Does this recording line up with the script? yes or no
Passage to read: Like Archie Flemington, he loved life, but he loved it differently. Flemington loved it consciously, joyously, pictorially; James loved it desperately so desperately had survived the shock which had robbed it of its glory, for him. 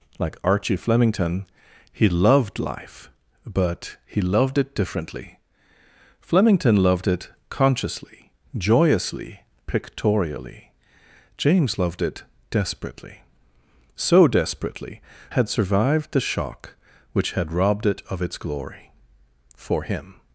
yes